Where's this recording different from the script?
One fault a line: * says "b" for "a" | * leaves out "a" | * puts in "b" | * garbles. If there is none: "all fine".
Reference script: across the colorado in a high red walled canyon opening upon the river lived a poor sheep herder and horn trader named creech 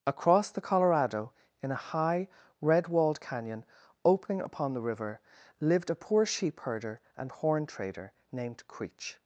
all fine